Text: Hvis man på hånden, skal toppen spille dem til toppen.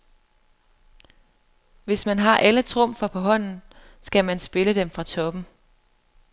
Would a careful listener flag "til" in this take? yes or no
yes